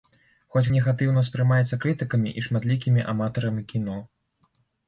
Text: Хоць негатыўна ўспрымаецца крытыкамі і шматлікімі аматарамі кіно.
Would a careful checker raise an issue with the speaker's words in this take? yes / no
no